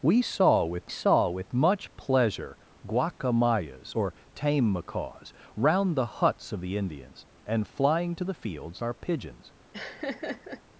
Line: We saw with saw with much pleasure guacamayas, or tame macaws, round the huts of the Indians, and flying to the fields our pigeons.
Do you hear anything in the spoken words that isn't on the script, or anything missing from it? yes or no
no